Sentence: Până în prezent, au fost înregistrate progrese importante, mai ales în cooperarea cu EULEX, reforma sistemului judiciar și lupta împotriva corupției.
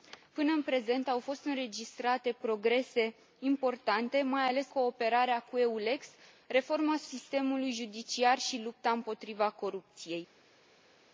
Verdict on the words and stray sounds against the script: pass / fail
fail